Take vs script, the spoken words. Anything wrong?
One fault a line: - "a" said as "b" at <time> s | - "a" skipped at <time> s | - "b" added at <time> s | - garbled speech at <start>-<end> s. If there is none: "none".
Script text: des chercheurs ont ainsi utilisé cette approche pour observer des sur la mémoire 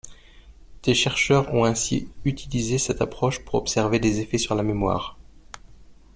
- "effets" added at 4.2 s